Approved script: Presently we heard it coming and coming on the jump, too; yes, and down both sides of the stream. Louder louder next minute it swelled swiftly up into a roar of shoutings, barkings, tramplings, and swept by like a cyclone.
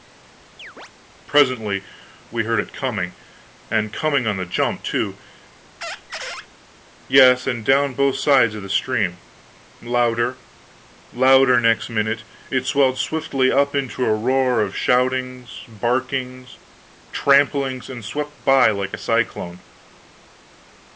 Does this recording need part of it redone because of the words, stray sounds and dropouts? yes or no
yes